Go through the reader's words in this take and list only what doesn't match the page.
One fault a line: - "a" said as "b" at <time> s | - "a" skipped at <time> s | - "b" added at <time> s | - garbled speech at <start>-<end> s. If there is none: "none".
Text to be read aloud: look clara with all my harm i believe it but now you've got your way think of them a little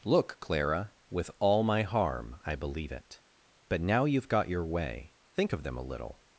none